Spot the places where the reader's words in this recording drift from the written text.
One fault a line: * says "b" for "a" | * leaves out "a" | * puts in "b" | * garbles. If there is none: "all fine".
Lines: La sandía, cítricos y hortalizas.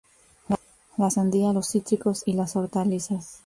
* puts in "los"
* puts in "las"